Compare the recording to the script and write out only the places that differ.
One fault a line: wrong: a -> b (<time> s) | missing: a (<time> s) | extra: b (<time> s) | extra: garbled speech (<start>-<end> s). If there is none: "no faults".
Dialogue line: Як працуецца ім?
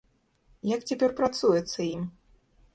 extra: цяпер (0.9 s)